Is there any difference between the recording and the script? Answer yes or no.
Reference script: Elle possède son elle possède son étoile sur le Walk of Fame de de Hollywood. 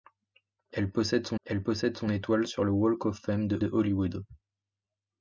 no